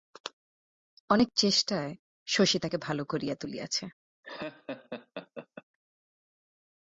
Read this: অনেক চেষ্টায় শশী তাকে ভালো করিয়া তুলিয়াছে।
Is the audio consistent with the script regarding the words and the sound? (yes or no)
no